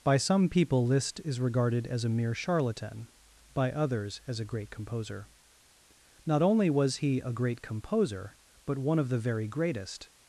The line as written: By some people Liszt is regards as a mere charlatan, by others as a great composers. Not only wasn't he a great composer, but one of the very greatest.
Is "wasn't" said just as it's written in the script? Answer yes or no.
no